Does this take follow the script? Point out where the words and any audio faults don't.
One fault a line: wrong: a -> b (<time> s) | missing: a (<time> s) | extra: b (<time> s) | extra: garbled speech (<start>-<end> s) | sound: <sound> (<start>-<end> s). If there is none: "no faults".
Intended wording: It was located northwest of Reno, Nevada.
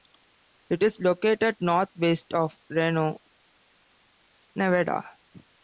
wrong: was -> is (0.8 s)